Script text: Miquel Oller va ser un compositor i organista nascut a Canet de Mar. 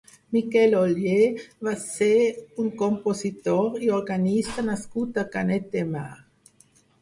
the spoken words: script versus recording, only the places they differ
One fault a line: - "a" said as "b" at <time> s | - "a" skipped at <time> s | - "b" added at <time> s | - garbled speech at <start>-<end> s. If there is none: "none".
none